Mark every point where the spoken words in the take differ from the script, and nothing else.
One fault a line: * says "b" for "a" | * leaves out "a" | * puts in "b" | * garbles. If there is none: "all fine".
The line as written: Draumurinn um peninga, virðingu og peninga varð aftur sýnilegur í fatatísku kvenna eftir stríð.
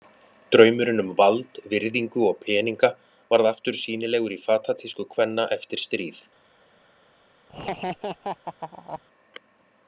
* says "vald" for "peninga"